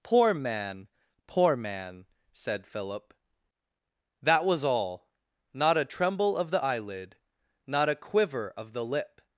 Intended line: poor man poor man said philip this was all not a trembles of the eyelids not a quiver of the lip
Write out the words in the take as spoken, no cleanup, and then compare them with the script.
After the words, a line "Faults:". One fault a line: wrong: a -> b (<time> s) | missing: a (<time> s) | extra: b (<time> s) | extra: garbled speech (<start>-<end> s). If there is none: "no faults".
poor man poor man said philip that was all not a tremble of the eyelid not a quiver of the lip
Faults:
wrong: this -> that (4.2 s)
wrong: trembles -> tremble (5.8 s)
wrong: eyelids -> eyelid (6.6 s)